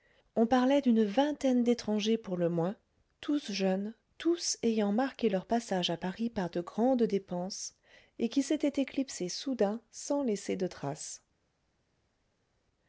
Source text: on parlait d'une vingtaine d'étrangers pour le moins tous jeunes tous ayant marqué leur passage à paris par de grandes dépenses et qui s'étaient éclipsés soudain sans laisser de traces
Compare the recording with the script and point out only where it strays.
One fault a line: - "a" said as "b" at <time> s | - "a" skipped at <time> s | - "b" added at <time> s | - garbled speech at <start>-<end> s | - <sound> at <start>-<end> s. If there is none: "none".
none